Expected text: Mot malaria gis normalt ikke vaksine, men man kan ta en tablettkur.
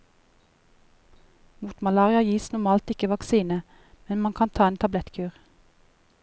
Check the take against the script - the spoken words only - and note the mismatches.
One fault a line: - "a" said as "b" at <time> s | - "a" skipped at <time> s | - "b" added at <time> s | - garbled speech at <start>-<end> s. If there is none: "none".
none